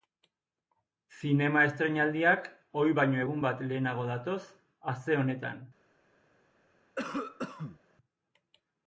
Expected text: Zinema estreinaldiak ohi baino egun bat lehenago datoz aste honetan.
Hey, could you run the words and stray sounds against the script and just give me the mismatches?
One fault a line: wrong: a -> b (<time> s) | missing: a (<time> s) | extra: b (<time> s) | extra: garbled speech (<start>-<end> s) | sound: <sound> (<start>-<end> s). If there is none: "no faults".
sound: cough (7.0-7.8 s)